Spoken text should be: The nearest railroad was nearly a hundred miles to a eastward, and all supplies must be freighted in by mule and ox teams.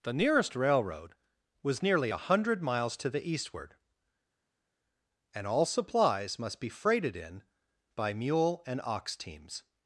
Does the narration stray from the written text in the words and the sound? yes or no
yes